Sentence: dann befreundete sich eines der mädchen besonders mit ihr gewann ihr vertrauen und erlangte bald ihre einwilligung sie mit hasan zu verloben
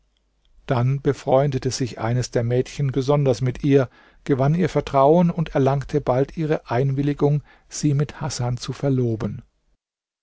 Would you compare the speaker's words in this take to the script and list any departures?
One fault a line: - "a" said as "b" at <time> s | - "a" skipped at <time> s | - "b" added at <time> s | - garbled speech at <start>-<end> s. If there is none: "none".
none